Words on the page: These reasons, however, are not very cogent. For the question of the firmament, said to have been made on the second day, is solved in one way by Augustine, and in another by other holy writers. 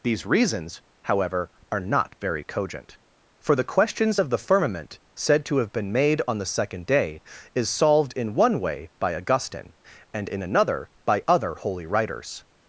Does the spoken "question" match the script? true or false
false